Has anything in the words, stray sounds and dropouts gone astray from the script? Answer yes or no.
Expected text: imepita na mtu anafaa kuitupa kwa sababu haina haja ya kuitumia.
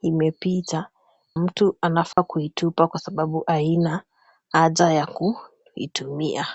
yes